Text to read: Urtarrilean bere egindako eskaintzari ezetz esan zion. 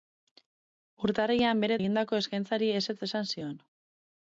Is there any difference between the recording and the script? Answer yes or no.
no